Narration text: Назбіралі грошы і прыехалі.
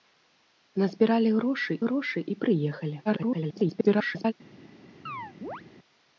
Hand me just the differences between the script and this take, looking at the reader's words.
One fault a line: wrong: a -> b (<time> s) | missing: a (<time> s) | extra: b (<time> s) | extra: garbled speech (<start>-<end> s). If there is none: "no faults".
extra: грошы (1.8 s)
extra: garbled speech (3.1-4.3 s)